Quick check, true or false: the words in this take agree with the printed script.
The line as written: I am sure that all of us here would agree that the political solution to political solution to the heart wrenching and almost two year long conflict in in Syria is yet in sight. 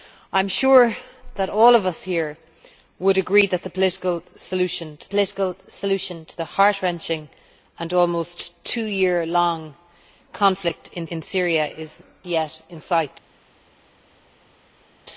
true